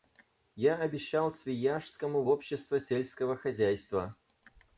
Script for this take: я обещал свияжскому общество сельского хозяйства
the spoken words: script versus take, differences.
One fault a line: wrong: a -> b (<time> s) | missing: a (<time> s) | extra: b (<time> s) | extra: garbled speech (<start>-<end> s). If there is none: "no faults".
no faults